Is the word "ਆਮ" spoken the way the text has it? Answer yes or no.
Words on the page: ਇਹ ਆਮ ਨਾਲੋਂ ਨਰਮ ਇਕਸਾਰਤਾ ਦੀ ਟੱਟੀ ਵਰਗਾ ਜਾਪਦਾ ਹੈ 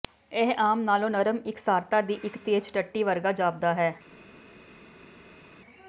yes